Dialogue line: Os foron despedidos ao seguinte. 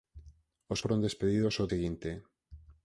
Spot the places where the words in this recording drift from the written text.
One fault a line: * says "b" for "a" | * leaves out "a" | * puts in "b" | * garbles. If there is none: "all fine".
all fine